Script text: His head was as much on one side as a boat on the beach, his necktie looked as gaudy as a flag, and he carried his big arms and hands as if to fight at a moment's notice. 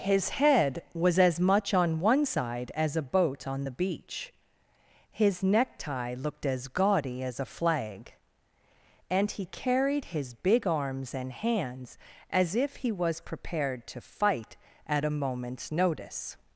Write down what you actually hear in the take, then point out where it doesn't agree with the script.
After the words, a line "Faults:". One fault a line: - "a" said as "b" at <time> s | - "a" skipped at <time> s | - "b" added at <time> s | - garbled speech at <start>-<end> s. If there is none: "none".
His head was as much on one side as a boat on the beach, his necktie looked as gaudy as a flag, and he carried his big arms and hands as if he was prepared to fight at a moment's notice.
Faults:
- "he was prepared" added at 12.8 s